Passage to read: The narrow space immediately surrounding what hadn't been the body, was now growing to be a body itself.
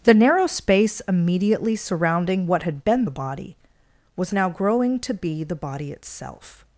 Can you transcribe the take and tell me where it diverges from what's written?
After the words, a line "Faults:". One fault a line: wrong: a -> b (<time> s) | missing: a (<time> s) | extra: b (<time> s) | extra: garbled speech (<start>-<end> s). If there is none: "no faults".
The narrow space immediately surrounding what had been the body, was now growing to be the body itself.
Faults:
wrong: hadn't -> had (2.6 s)
wrong: a -> the (5.4 s)